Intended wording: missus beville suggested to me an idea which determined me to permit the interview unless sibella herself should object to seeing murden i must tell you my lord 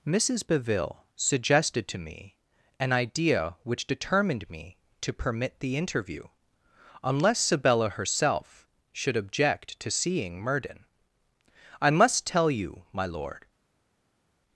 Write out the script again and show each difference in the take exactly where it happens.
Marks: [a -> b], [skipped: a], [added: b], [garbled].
missus beville suggested to me an idea which determined me to permit the interview unless sibella herself should object to seeing murden i must tell you my lord